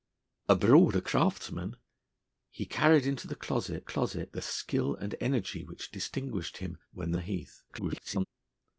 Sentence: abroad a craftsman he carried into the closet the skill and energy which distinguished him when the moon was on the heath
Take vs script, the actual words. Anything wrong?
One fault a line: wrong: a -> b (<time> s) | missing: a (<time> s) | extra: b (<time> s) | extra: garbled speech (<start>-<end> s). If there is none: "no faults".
extra: closet (3.8 s)
missing: moon was on (7.2 s)
extra: garbled speech (7.7-8.3 s)